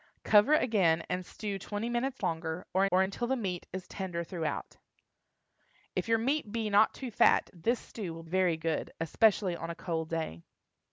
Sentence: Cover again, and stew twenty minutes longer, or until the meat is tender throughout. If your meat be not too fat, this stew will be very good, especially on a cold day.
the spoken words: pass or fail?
fail